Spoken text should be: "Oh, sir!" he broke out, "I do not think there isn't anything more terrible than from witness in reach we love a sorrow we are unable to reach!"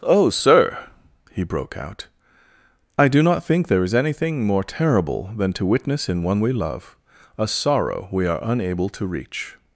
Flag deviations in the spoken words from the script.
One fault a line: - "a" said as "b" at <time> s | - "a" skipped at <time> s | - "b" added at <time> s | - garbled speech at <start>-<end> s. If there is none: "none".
- "isn't" said as "is" at 3.8 s
- "from" said as "to" at 5.5 s
- "reach" said as "one" at 6.2 s